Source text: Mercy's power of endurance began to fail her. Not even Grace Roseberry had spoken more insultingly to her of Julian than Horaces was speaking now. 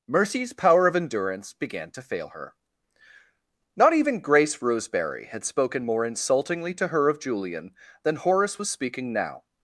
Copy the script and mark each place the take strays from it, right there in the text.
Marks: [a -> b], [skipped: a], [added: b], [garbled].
Mercy's power of endurance began to fail her. Not even Grace Roseberry had spoken more insultingly to her of Julian than [Horaces -> Horace] was speaking now.